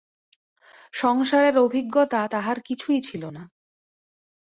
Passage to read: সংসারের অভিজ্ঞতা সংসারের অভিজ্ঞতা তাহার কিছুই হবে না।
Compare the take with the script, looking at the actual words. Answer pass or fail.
fail